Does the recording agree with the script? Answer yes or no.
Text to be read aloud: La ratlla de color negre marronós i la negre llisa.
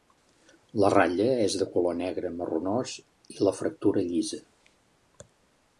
no